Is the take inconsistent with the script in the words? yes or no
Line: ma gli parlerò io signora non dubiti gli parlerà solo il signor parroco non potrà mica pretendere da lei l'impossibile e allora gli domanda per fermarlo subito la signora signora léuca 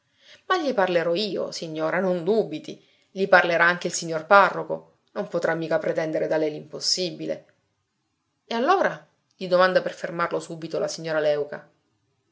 yes